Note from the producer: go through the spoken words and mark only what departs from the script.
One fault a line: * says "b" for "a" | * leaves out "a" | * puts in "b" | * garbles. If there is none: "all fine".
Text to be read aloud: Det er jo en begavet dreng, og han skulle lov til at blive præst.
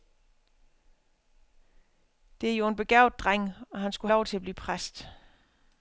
all fine